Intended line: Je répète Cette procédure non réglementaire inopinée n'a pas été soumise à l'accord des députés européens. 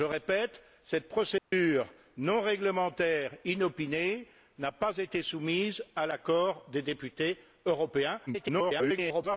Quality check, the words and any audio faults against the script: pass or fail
fail